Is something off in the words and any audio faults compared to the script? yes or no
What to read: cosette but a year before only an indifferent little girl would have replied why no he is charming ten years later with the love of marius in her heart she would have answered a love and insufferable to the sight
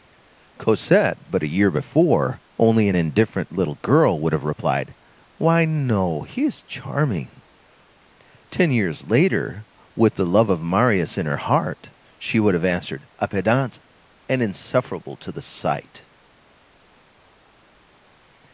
yes